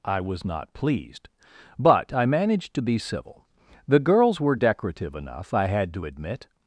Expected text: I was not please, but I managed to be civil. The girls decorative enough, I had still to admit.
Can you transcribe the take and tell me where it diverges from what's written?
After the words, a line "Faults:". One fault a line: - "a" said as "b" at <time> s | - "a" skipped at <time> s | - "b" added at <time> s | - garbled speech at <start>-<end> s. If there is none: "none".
I was not pleased, but I managed to be civil. The girls were decorative enough, I had to admit.
Faults:
- "please" said as "pleased" at 0.7 s
- "were" added at 4.4 s
- "still" skipped at 5.9 s